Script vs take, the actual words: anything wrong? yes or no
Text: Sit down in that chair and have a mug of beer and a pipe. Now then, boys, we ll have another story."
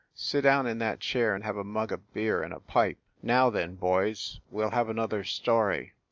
no